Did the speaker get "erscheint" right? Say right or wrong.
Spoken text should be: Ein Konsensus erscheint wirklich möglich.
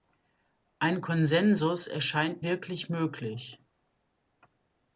right